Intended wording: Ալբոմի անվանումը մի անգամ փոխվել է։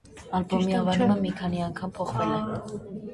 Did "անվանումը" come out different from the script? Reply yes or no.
no